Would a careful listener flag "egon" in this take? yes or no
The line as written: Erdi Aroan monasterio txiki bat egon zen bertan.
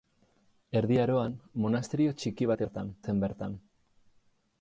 yes